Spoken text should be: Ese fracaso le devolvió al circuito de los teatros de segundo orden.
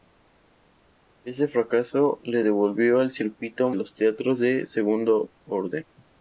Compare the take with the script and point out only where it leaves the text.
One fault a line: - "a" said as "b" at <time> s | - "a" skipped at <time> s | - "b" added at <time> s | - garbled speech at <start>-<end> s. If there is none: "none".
- "de" skipped at 3.7 s